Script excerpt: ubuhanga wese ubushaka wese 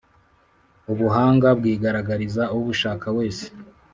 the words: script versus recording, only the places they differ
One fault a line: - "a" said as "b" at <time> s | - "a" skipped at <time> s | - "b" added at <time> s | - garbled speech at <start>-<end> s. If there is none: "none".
- "wese" said as "bwigaragariza" at 1.6 s